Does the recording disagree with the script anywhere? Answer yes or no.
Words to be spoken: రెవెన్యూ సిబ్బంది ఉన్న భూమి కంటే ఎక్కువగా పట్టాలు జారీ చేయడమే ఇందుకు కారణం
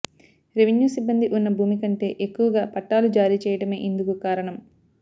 no